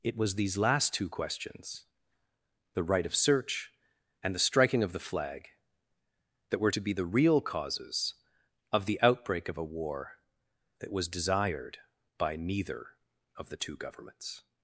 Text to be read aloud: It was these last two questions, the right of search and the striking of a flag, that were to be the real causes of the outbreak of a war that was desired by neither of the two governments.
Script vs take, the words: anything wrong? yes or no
yes